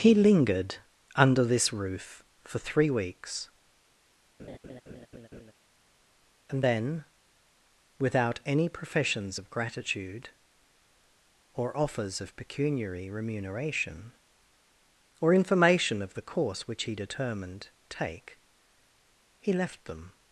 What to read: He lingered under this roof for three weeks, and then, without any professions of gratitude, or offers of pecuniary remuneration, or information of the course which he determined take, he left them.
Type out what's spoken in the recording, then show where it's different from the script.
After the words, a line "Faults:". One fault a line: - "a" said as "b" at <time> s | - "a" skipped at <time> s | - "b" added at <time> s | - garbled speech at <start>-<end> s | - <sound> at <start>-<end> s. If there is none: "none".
He lingered under this roof for three weeks, and then, without any professions of gratitude, or offers of pecuniary remuneration, or information of the course which he determined take, he left them.
Faults:
- laugh at 4.4-5.5 s